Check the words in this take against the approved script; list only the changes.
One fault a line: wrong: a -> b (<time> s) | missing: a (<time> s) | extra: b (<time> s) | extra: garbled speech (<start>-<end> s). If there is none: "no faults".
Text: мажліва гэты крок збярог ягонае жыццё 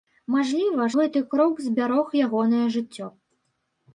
no faults